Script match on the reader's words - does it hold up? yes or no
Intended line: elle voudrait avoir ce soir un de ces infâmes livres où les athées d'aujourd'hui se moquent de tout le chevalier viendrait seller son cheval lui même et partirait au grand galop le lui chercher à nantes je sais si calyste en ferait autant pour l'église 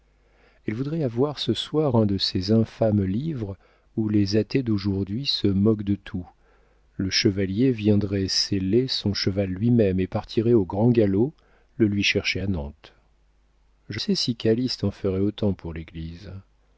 yes